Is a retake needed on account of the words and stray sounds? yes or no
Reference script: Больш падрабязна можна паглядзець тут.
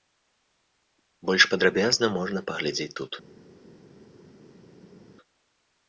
no